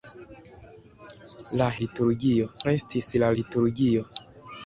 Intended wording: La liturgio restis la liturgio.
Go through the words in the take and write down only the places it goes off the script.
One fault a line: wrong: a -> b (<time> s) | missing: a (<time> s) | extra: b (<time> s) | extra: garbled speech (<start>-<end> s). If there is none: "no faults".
no faults